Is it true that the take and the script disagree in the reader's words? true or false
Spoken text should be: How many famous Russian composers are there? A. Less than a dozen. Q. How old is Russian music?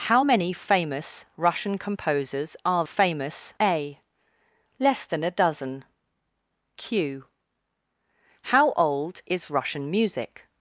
true